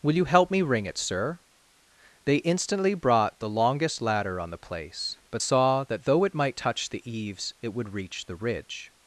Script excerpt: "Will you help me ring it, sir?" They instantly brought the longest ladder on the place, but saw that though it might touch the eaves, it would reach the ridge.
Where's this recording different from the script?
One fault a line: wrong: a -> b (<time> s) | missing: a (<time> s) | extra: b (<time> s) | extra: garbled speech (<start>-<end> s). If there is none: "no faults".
no faults